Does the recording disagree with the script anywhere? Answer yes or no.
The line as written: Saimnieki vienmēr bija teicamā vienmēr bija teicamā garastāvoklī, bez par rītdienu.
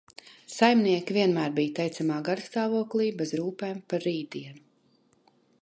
yes